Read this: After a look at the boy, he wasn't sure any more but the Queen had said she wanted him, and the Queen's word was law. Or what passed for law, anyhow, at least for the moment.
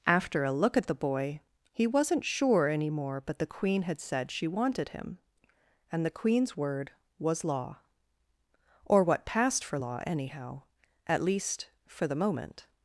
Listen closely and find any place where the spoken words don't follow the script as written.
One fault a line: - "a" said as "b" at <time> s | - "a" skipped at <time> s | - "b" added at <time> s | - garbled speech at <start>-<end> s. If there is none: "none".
none